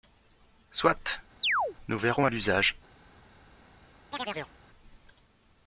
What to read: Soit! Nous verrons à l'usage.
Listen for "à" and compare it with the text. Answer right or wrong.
right